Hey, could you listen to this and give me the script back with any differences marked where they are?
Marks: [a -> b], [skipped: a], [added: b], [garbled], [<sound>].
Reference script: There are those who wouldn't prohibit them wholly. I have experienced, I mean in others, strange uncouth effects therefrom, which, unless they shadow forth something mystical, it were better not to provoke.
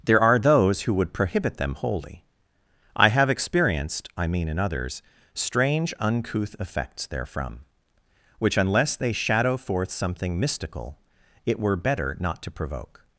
There are those who [wouldn't -> would] prohibit them wholly. I have experienced, I mean in others, strange uncouth effects therefrom, which, unless they shadow forth something mystical, it were better not to provoke.